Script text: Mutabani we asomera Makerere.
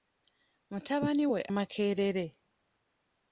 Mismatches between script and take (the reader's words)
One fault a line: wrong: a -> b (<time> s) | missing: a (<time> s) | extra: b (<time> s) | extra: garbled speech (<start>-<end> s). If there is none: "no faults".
missing: asomera (1.4 s)